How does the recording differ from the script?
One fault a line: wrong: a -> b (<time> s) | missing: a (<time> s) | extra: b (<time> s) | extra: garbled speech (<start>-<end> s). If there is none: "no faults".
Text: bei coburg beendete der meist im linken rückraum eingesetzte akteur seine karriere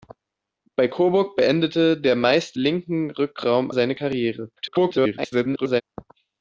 missing: im (2.6 s)
missing: eingesetzte akteur (3.7 s)
extra: garbled speech (4.6-5.8 s)